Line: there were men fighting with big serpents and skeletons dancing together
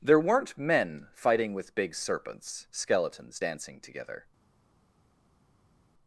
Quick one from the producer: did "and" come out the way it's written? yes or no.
no